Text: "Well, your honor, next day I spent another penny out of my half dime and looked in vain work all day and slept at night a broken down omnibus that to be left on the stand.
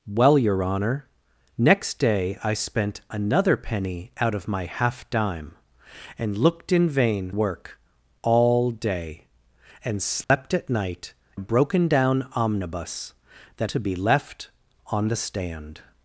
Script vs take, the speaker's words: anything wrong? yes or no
no